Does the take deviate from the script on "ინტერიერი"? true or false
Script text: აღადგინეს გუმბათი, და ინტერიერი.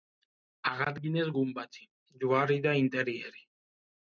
false